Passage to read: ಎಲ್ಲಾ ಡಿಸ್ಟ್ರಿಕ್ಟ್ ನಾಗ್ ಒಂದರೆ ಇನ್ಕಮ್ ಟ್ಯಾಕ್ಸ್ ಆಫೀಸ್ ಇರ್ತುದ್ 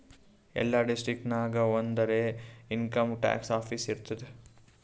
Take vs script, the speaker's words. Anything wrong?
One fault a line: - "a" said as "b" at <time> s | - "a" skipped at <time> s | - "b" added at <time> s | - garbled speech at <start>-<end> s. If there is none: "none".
none